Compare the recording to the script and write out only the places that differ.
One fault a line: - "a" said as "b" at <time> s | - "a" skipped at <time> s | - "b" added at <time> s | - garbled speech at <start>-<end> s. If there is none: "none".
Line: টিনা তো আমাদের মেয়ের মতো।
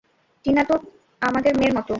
none